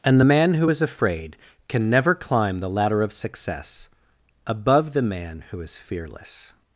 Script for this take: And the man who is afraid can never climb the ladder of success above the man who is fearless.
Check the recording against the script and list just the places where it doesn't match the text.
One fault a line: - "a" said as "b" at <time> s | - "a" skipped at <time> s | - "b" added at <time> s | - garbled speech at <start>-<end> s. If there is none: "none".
none